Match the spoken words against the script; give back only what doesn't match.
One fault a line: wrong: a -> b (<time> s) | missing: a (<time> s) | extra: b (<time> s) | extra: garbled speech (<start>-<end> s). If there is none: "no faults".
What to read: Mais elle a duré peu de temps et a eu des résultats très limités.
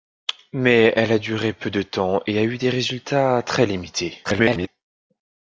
extra: garbled speech (4.2-4.7 s)